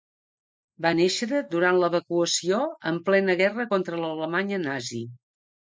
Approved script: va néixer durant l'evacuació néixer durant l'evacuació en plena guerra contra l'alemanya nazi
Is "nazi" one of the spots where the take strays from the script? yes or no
no